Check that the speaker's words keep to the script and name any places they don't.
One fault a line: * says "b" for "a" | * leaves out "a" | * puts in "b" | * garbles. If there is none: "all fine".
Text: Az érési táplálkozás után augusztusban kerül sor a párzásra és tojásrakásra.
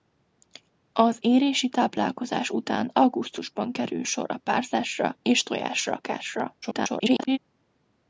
* garbles